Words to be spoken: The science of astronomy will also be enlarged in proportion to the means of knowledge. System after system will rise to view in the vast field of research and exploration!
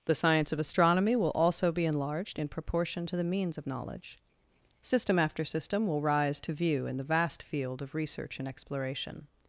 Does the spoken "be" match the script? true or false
true